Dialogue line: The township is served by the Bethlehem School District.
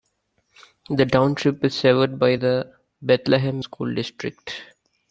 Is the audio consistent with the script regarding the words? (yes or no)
yes